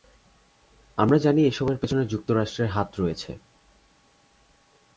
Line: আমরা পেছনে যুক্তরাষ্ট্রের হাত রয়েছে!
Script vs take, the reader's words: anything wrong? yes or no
yes